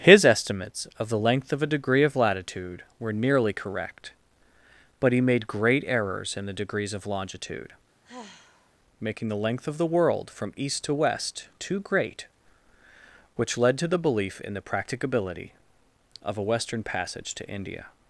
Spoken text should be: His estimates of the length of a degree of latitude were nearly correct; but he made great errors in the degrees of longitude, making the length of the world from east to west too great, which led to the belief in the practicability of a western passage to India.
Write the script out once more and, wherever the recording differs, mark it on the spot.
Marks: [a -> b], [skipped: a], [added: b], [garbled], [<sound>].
His estimates of the length of a degree of latitude were nearly correct; but he made great errors in the degrees of longitude, [sigh] making the length of the world from east to west too great, which led to the belief in the practicability of a western passage to India.